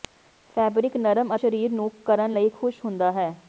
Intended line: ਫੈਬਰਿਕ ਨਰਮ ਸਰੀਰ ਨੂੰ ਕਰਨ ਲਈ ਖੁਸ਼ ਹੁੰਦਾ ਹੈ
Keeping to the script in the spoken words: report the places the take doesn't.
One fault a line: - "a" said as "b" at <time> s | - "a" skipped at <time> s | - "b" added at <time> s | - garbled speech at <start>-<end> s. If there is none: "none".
none